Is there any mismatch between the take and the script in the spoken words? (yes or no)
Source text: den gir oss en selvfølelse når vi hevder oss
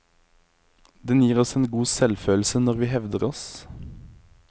yes